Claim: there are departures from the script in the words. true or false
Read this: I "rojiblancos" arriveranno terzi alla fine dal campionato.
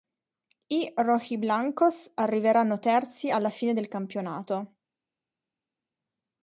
true